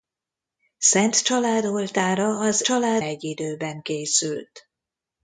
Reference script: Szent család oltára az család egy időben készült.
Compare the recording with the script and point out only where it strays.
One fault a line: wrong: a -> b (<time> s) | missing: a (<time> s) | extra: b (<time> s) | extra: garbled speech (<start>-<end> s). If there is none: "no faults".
no faults